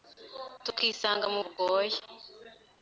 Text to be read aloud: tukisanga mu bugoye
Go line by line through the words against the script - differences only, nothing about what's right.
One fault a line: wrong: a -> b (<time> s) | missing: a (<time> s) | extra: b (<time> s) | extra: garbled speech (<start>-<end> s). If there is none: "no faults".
no faults